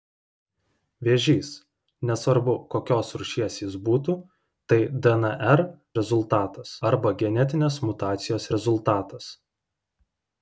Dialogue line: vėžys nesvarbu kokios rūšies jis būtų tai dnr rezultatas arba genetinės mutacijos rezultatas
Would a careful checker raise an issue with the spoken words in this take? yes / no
no